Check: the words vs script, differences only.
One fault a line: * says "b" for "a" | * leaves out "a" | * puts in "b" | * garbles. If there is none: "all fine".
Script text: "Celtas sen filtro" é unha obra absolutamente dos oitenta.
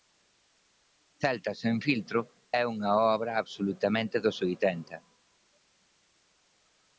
all fine